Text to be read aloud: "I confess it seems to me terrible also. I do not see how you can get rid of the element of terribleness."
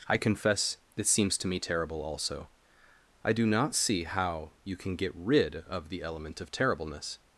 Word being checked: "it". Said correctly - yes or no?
no